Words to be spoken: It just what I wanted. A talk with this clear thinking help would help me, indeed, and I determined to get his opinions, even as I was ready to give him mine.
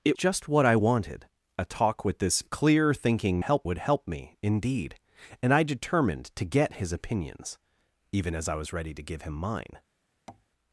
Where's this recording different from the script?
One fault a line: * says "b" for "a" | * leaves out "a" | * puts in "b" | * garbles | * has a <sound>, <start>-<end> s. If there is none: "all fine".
* has a tap, 10.3-10.5 s